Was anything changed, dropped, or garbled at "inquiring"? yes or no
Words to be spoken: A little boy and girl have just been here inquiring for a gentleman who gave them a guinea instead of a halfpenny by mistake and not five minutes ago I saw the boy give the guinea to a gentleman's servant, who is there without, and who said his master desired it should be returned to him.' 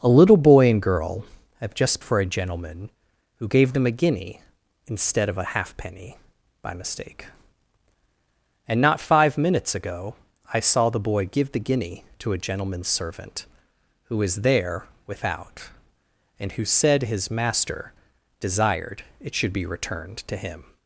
yes